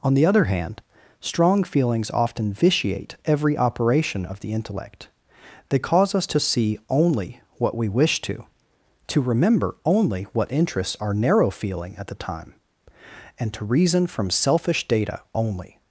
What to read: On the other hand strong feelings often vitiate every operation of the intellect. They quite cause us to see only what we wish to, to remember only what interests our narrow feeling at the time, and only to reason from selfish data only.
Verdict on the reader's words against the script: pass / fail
fail